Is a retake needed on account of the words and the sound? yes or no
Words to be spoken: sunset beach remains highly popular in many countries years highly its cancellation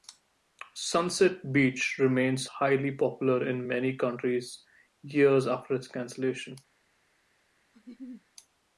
yes